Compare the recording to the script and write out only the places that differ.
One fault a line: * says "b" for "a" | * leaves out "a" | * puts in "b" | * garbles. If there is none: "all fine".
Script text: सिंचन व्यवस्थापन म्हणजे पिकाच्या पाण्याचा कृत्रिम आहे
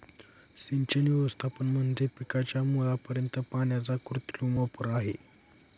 * puts in "मुळापर्यंत"
* puts in "वापर"